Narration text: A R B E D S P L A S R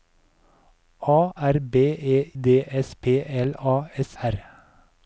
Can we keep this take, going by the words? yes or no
yes